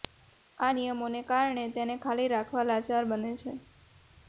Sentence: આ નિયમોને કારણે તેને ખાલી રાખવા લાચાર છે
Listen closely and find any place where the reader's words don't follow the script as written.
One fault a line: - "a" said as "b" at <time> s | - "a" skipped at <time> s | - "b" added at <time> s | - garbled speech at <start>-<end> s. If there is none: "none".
- "બને" added at 3.1 s